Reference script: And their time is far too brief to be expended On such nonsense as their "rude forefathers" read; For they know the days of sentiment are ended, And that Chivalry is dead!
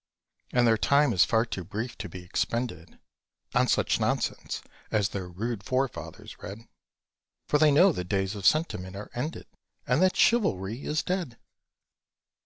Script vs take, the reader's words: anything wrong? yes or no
no